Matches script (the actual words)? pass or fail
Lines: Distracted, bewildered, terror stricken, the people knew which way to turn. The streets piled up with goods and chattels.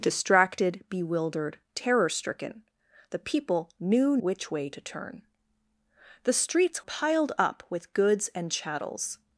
pass